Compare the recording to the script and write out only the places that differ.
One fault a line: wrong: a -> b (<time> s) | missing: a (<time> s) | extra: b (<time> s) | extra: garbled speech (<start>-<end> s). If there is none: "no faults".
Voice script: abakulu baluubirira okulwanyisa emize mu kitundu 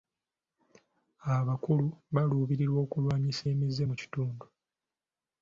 no faults